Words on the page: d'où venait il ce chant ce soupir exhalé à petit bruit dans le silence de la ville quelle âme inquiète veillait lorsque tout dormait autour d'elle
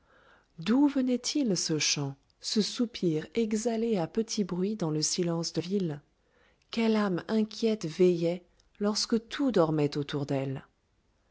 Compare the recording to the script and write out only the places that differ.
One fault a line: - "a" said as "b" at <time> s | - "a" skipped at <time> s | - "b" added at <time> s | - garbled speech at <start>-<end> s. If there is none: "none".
- "la" skipped at 5.6 s